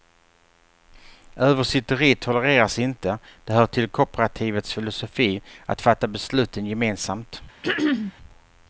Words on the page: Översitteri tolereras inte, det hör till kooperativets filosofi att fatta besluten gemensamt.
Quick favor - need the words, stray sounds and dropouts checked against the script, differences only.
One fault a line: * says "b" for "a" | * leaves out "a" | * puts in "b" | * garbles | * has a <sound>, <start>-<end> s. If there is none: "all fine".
* has a throat clearing, 7.6-8.1 s